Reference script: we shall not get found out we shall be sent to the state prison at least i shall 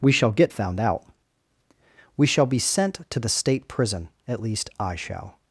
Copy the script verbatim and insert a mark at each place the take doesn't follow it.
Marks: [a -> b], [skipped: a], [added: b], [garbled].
we shall [skipped: not] get found out we shall be sent to the state prison at least i shall